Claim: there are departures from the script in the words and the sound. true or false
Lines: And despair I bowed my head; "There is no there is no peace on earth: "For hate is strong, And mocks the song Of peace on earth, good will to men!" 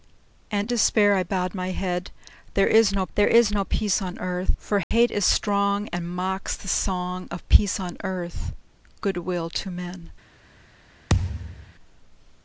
true